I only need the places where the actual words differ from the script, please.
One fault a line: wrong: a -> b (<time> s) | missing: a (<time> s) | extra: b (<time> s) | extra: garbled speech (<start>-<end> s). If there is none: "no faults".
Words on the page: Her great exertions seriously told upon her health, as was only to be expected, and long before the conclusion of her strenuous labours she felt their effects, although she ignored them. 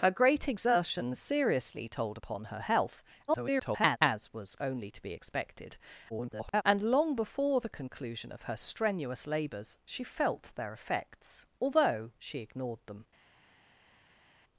extra: garbled speech (3.3-4.0 s)
extra: garbled speech (6.1-6.6 s)